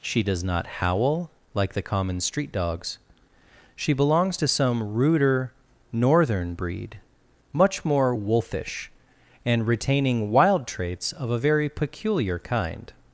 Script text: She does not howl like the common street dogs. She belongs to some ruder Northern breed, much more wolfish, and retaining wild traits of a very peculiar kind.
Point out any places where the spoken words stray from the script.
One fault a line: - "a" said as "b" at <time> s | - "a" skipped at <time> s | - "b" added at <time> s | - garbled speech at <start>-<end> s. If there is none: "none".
none